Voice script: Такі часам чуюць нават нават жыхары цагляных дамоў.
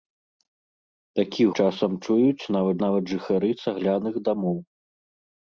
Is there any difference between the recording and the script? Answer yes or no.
no